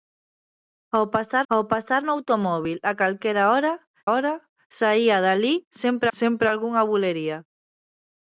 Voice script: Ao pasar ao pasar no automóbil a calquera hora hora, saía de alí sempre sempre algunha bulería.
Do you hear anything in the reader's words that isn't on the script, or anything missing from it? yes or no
no